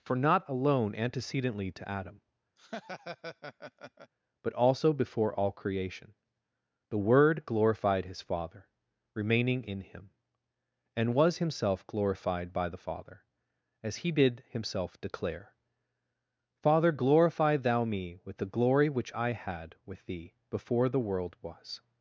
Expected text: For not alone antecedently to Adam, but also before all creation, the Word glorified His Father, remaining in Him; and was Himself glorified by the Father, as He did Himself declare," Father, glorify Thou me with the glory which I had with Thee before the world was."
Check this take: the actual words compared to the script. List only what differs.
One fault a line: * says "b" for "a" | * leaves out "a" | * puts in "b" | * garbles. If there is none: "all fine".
all fine